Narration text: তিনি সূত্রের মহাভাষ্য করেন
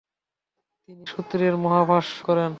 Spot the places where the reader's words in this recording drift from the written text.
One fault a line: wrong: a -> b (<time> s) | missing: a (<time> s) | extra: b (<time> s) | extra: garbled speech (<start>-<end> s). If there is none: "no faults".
no faults